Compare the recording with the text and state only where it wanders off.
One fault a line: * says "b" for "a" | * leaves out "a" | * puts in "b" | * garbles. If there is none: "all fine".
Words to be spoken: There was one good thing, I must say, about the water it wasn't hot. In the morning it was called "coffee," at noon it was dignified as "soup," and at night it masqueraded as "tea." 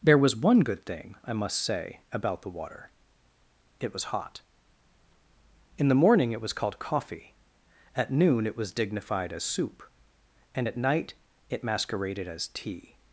* says "was" for "wasn't"